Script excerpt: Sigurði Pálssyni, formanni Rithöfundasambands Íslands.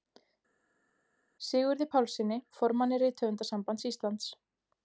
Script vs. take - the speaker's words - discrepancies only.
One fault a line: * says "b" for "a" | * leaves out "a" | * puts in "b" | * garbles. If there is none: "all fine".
all fine